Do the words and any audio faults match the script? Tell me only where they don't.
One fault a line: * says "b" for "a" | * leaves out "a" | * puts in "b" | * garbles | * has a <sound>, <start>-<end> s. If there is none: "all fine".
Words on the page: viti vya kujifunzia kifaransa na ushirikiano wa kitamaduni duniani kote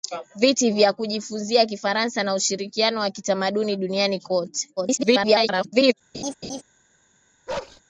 * garbles
* has a laugh, 6.1-6.6 s
* has a bark, 7.5-7.8 s